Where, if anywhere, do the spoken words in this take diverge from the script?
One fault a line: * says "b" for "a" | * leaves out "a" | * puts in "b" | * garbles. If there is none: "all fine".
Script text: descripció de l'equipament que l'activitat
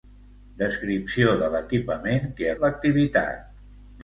all fine